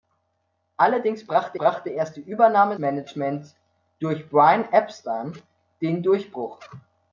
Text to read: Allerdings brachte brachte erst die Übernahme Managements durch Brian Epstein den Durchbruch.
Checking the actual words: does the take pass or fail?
pass